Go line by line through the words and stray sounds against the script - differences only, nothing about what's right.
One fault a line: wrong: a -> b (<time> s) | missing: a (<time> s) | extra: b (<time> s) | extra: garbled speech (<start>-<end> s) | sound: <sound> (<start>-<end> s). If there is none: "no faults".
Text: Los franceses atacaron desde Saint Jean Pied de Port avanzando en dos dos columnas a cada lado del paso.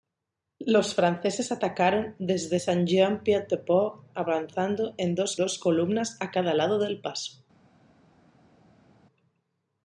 no faults